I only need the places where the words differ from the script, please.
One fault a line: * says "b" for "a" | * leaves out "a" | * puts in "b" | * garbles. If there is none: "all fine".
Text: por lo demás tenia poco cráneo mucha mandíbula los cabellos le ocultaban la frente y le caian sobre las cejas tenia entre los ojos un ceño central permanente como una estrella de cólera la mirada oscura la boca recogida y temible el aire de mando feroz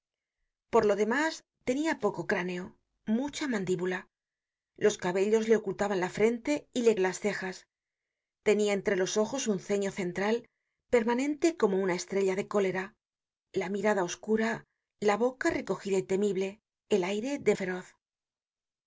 * leaves out "caian sobre"
* leaves out "mando"